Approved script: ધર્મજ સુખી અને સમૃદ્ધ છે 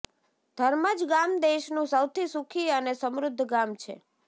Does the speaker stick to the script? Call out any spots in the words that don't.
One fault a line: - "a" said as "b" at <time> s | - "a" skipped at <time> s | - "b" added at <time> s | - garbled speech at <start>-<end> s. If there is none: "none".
- "ગામ દેશનું સૌથી" added at 1.1 s
- "ગામ" added at 3.5 s